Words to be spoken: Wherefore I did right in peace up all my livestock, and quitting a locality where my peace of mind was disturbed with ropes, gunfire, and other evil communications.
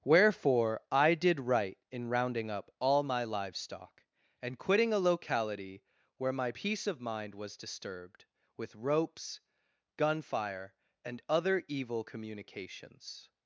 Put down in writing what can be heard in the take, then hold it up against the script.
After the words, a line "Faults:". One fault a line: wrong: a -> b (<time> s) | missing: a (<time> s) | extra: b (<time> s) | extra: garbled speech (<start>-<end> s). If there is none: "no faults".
Wherefore I did right in rounding up all my livestock, and quitting a locality where my peace of mind was disturbed with ropes, gunfire, and other evil communications.
Faults:
wrong: peace -> rounding (2.1 s)